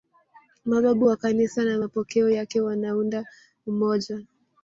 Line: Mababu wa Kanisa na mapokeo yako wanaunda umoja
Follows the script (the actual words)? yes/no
no